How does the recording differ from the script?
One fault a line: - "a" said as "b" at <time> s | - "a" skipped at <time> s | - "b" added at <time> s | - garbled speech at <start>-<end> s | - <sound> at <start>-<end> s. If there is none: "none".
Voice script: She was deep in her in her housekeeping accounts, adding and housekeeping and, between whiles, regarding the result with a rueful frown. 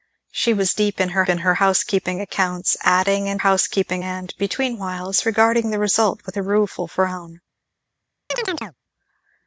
- chirp at 8.3-8.7 s